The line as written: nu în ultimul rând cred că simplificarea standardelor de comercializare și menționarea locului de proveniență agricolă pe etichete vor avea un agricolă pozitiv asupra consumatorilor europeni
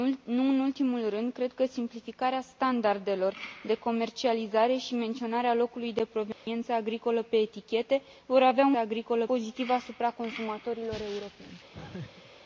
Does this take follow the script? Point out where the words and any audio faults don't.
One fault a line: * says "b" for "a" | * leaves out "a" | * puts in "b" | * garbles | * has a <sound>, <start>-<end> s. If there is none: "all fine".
* has a dropout, 6.3-6.5 s
* has a laugh, 11.7-12.3 s